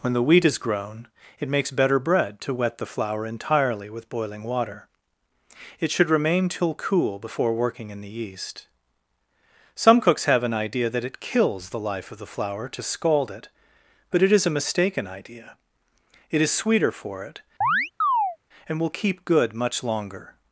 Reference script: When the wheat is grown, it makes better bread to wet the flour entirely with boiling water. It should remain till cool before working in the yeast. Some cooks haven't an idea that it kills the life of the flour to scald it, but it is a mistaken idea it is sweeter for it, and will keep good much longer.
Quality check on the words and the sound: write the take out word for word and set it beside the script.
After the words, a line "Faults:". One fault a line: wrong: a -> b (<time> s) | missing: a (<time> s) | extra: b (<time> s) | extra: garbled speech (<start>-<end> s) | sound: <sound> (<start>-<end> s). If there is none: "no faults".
When the wheat is grown, it makes better bread to wet the flour entirely with boiling water. It should remain till cool before working in the yeast. Some cooks have an idea that it kills the life of the flour to scald it, but it is a mistaken idea it is sweeter for it, and will keep good much longer.
Faults:
wrong: haven't -> have (10.2 s)
sound: chirp (17.6-18.4 s)